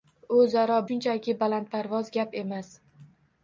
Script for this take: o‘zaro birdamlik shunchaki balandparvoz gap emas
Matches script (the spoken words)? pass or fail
fail